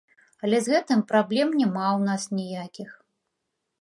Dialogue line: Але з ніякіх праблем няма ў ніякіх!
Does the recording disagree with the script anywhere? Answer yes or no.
yes